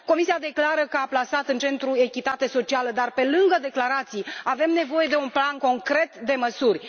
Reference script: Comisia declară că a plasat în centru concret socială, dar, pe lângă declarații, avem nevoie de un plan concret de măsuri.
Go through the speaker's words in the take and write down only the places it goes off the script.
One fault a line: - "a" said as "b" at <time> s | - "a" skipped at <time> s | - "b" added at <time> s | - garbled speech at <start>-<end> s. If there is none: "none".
- "concret" said as "echitatea" at 1.9 s